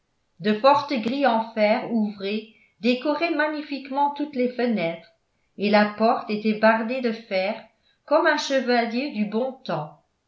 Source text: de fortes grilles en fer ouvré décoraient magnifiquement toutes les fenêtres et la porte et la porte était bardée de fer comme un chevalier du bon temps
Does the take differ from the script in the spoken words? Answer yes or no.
yes